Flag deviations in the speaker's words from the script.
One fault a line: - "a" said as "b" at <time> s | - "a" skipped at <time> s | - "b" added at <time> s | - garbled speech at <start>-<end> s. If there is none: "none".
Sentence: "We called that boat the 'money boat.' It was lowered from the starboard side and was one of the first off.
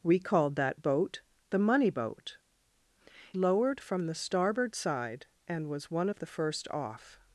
- "It was" skipped at 2.4 s